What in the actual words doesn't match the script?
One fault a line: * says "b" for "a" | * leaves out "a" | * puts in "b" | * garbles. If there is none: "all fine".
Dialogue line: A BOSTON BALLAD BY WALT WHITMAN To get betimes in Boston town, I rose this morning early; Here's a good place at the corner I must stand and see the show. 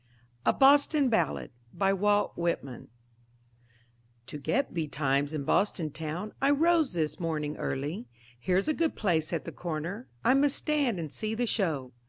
all fine